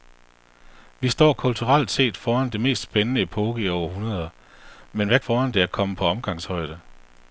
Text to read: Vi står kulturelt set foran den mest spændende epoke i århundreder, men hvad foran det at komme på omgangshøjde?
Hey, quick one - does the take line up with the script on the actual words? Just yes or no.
yes